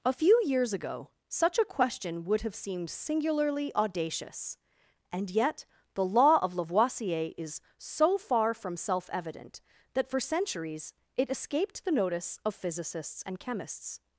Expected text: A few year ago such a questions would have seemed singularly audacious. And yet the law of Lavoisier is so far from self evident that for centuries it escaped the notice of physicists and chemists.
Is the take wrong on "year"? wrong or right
wrong